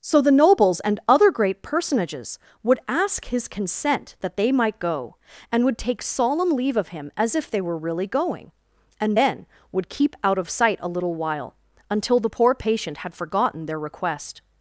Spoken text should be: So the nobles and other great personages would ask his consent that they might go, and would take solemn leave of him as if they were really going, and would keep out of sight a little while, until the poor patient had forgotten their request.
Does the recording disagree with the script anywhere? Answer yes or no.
yes